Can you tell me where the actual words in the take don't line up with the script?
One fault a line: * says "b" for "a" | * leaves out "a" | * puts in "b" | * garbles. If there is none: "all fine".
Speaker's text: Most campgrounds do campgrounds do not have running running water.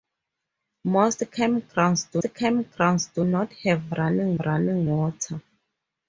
all fine